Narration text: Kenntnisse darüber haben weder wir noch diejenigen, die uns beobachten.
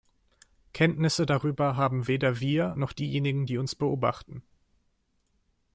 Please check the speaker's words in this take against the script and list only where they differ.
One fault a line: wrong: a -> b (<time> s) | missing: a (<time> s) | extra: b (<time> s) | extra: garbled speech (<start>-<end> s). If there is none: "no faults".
no faults